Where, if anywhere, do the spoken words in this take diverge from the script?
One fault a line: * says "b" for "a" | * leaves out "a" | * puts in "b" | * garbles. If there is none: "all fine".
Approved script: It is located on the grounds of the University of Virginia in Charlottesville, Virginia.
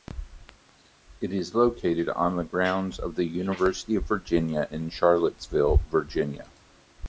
all fine